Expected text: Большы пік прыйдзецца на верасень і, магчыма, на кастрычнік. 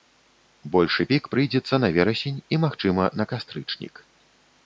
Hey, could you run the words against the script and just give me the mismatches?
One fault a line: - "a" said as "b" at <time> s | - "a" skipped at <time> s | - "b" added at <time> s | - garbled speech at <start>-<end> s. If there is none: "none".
none